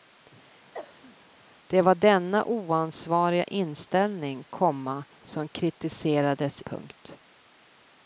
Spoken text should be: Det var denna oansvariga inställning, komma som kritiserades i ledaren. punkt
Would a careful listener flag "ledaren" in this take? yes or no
yes